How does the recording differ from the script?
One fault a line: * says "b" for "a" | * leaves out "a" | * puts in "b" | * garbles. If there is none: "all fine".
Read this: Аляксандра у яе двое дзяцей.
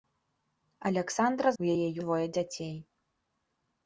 all fine